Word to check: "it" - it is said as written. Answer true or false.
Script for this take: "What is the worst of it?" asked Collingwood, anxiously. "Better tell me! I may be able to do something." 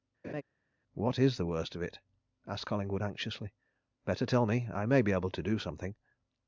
true